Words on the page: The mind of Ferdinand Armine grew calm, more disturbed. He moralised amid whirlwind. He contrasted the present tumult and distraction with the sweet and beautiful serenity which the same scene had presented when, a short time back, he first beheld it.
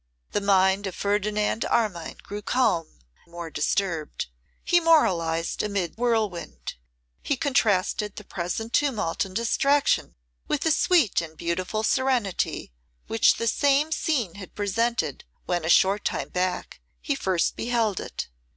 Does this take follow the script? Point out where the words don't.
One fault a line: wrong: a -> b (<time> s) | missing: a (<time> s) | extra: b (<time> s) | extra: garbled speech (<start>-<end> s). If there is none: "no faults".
no faults